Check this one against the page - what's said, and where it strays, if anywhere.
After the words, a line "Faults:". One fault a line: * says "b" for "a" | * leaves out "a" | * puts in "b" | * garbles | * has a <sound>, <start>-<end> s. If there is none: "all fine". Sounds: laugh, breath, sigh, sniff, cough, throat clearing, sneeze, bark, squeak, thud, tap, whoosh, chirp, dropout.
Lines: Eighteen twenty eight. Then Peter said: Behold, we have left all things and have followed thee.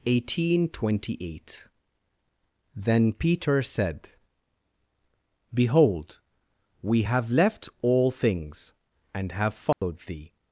Eighteen twenty eight. Then Peter said: Behold, we have left all things and have followed thee.
Faults:
* has a dropout, 9.7-9.8 s